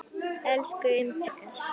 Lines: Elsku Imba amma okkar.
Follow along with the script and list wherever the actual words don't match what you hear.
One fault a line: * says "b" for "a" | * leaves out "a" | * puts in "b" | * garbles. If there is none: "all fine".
* leaves out "amma"